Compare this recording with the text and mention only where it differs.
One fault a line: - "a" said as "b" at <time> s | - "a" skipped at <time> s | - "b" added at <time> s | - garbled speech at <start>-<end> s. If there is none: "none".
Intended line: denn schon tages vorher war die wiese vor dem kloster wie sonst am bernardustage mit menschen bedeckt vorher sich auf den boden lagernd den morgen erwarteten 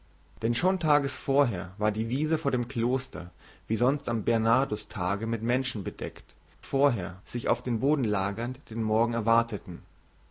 none